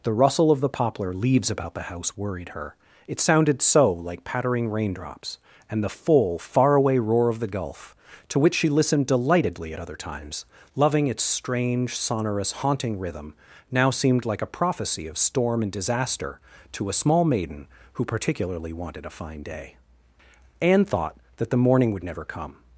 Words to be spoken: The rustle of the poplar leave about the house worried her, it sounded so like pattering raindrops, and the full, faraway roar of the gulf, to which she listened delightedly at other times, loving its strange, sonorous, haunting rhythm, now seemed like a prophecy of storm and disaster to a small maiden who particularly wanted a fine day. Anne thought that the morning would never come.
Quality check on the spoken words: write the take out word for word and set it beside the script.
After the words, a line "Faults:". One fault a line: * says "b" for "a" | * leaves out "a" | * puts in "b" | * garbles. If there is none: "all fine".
The rustle of the poplar leaves about the house worried her, it sounded so like pattering raindrops, and the full, faraway roar of the gulf, to which she listened delightedly at other times, loving its strange, sonorous, haunting rhythm, now seemed like a prophecy of storm and disaster to a small maiden who particularly wanted a fine day. Anne thought that the morning would never come.
Faults:
* says "leaves" for "leave"